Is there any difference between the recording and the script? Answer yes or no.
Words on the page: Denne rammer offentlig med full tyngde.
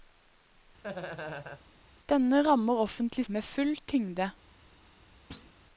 no